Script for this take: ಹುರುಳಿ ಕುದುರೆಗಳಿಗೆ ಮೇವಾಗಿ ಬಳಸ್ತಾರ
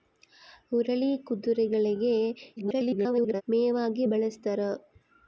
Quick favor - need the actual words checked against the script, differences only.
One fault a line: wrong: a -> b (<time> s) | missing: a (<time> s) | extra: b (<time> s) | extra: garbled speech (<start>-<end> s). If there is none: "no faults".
extra: garbled speech (2.6-3.4 s)